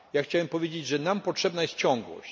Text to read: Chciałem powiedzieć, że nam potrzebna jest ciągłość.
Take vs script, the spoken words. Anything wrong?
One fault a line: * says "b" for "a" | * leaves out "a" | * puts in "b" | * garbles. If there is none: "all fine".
all fine